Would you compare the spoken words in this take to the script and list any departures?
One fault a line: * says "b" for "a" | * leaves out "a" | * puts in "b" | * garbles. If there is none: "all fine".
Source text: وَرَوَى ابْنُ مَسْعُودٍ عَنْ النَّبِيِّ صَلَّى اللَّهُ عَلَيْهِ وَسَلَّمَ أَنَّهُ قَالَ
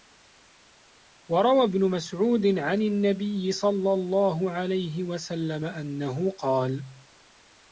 all fine